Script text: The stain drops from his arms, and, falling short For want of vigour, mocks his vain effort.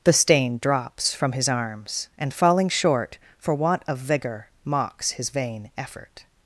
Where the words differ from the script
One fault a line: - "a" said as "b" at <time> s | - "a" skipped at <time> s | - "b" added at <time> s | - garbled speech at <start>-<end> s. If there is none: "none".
none